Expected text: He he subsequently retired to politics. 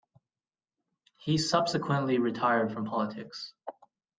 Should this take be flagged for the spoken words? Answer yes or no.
yes